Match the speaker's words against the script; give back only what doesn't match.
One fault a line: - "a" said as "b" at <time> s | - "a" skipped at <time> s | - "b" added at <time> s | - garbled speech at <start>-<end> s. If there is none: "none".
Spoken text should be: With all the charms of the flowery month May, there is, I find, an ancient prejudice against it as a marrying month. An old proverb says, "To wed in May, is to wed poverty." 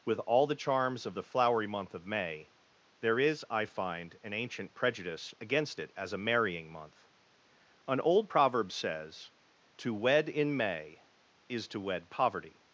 - "of" added at 1.9 s